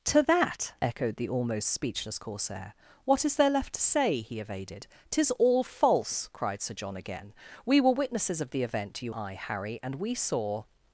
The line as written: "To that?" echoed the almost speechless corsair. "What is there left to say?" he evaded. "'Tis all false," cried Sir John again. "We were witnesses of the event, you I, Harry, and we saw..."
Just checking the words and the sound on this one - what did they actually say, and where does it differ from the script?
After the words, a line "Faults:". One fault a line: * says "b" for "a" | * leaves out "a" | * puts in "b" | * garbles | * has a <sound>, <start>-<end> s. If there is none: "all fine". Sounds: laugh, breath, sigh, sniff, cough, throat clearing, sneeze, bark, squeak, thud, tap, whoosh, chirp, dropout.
"To that?" echoed the almost speechless corsair. "What is there left to say?" he evaded. "'Tis all false," cried Sir John again. "We were witnesses of the event, you I, Harry, and we saw..."
Faults:
all fine